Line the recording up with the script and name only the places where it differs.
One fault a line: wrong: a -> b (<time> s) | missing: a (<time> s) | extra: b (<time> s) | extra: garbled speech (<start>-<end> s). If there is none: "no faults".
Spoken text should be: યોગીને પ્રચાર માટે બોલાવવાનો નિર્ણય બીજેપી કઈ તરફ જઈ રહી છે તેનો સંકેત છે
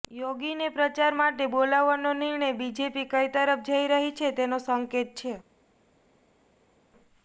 no faults